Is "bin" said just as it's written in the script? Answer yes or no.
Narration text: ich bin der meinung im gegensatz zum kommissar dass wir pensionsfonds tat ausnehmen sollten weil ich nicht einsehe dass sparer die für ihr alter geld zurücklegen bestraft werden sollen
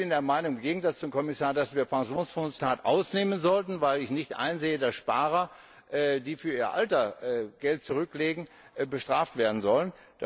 yes